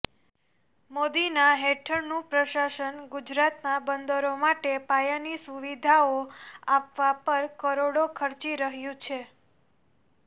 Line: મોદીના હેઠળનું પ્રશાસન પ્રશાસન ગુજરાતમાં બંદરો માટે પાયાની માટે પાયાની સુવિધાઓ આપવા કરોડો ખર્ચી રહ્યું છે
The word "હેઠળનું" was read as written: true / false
true